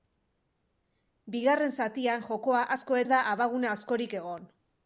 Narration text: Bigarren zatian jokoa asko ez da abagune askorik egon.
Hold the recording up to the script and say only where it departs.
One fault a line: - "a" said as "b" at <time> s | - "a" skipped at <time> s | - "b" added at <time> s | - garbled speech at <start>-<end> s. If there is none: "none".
none